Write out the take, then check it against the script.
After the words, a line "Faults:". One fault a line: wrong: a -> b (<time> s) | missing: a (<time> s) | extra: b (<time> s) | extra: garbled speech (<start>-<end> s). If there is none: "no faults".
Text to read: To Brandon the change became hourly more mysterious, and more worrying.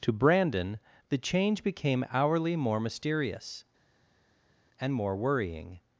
To Brandon the change became hourly more mysterious, and more worrying.
Faults:
no faults